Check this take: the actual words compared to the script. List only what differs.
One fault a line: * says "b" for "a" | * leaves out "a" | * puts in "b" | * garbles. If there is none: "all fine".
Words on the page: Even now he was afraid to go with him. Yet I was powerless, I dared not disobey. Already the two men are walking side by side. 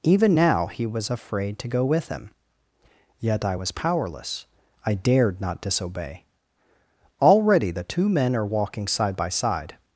all fine